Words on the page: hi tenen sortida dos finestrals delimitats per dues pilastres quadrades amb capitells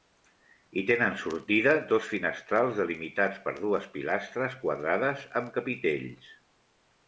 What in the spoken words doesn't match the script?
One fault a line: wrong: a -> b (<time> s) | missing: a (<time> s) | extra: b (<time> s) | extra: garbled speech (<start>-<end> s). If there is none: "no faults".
no faults